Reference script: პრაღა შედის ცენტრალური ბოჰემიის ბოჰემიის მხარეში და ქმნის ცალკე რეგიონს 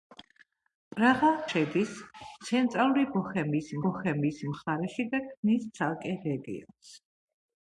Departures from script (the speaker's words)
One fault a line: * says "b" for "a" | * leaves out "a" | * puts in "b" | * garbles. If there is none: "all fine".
all fine